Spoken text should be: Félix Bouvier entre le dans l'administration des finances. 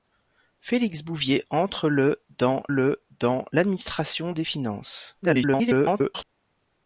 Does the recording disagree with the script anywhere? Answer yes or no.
yes